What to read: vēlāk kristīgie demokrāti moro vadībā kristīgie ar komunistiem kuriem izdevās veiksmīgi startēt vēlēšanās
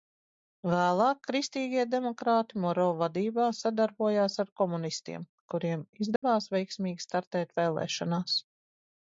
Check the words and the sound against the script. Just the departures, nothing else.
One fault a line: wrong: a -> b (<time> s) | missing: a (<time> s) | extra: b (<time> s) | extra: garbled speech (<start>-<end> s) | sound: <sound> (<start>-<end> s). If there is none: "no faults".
wrong: kristīgie -> sadarbojās (3.6 s)
sound: dropout (6.2-6.2 s)